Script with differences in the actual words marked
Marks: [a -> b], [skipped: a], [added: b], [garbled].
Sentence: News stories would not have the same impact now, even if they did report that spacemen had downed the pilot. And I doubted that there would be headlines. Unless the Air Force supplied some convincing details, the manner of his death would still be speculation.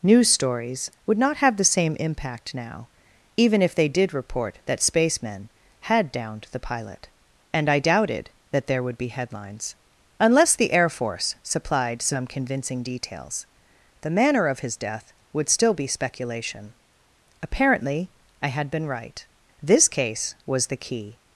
News stories would not have the same impact now, even if they did report that spacemen had downed the pilot. And I doubted that there would be headlines. Unless the Air Force supplied some convincing details, the manner of his death would still be speculation. [added: Apparently I had been right this case was the key]